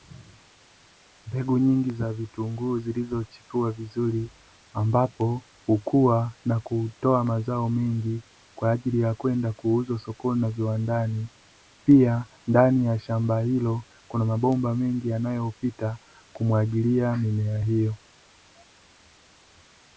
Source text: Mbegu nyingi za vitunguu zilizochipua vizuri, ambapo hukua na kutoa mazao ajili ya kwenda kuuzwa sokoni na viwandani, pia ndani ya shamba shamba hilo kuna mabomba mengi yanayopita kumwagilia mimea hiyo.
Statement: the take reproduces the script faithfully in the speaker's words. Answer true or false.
false